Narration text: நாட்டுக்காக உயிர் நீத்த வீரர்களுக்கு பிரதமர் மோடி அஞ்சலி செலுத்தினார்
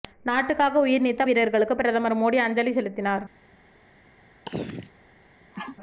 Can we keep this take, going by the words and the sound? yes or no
no